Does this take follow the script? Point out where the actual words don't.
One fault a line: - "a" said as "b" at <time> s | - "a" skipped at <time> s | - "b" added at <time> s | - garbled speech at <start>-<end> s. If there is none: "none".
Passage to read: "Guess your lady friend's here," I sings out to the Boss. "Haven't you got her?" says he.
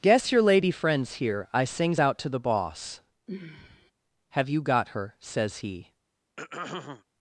- "Haven't" said as "Have" at 4.3 s